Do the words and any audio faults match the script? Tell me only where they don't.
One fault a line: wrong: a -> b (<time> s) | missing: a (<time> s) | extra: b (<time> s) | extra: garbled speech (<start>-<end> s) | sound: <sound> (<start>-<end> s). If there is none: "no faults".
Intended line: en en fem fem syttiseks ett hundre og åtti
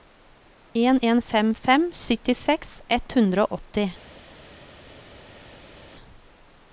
no faults